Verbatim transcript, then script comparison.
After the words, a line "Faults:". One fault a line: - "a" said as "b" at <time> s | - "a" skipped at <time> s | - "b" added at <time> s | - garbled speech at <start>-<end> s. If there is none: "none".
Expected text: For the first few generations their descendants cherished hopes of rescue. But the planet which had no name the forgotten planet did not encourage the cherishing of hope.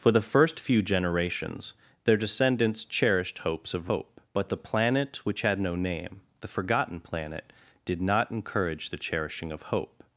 For the first few generations their descendants cherished hopes of hope. But the planet which had no name the forgotten planet did not encourage the cherishing of hope.
Faults:
- "rescue" said as "hope" at 3.9 s